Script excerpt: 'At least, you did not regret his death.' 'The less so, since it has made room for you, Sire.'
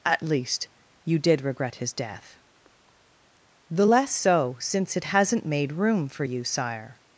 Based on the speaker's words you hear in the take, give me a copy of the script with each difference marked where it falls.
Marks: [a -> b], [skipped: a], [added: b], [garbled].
'At least, you did [skipped: not] regret his death.' 'The less so, since it [has -> hasn't] made room for you, Sire.'